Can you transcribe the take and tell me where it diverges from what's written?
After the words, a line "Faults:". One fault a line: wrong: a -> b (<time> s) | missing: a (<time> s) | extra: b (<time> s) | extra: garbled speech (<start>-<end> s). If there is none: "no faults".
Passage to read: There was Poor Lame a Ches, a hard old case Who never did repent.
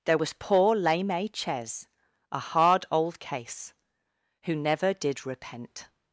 There was Poor Lame a Ches, a hard old case Who never did repent.
Faults:
no faults